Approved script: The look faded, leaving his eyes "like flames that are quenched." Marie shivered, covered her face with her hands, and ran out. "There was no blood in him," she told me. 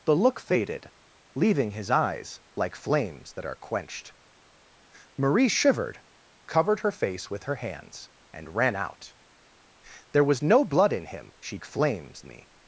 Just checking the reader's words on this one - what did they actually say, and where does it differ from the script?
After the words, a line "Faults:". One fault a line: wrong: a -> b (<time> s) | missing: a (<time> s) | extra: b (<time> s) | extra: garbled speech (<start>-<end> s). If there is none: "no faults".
The look faded, leaving his eyes "like flames that are quenched." Marie shivered, covered her face with her hands, and ran out. "There was no blood in him," she flames me.
Faults:
wrong: told -> flames (11.6 s)